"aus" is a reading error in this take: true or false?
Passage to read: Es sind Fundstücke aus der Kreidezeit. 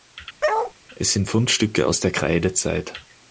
false